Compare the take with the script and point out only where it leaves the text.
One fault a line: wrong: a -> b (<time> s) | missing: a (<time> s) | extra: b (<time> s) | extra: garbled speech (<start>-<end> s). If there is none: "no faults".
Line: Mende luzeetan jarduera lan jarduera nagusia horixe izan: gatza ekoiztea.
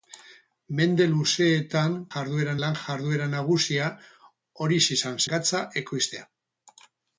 no faults